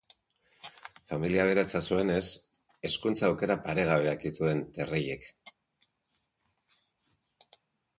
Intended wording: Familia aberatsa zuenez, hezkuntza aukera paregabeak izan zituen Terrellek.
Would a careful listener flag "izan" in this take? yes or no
yes